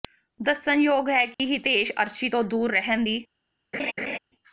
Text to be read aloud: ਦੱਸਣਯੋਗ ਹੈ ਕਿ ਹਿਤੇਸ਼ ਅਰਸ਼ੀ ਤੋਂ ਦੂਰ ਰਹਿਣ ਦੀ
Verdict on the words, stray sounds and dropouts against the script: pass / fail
fail